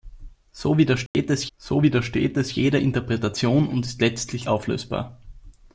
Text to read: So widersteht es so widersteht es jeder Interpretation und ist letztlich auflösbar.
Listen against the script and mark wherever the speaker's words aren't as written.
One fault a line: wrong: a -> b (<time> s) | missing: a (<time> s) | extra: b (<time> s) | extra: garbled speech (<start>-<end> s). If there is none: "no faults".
no faults